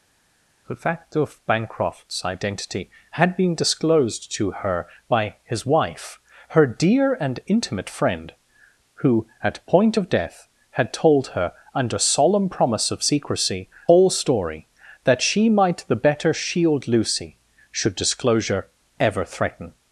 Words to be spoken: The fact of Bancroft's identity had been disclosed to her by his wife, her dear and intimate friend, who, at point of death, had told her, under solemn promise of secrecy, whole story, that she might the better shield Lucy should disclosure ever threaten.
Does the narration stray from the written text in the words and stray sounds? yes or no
no